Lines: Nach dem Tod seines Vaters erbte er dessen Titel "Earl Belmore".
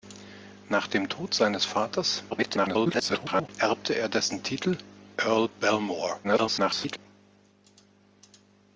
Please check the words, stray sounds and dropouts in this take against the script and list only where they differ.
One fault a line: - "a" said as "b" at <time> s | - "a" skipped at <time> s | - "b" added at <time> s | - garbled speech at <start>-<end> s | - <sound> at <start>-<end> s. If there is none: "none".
- garbled speech at 2.3-3.5 s
- garbled speech at 6.2-7.0 s